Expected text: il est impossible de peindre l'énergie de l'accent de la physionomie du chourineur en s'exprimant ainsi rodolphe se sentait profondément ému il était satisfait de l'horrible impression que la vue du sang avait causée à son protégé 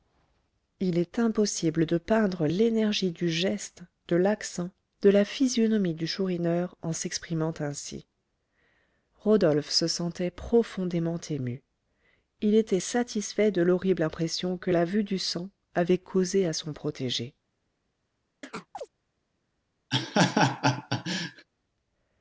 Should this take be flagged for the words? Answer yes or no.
yes